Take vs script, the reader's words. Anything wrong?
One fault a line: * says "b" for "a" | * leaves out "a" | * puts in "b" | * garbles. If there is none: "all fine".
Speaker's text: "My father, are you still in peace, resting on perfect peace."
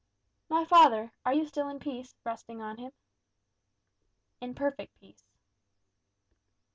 * puts in "him In"